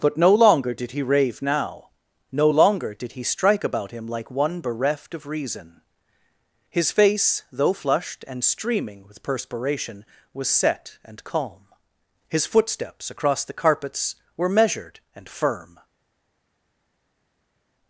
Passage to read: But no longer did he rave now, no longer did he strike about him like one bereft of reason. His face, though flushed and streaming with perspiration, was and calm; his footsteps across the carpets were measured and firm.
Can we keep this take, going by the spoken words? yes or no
no